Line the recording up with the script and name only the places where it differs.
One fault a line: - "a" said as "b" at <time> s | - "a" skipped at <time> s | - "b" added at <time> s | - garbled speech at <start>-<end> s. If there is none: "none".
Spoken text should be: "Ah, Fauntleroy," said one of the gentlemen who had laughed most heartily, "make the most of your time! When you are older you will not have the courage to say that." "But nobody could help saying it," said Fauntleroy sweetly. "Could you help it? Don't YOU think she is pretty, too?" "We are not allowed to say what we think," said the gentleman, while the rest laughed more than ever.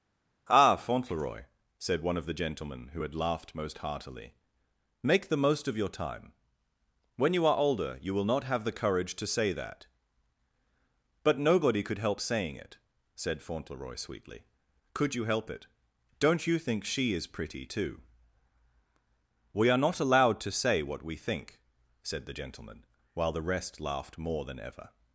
none